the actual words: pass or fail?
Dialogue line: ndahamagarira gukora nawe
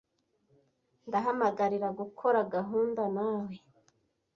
fail